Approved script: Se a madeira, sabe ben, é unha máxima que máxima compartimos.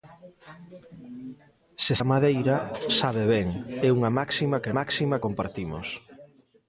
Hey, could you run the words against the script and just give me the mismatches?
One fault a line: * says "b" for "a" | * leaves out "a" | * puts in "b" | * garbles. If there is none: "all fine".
all fine